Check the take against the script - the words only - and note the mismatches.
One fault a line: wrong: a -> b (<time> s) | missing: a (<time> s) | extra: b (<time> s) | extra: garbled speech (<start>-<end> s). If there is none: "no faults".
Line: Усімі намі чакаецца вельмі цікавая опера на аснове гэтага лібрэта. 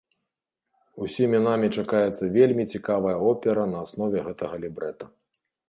no faults